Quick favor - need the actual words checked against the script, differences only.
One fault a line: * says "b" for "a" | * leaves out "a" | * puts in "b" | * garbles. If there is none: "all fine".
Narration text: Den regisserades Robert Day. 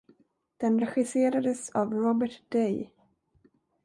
* puts in "av"